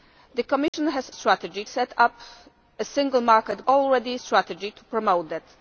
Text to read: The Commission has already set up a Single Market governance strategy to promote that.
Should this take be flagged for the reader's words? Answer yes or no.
yes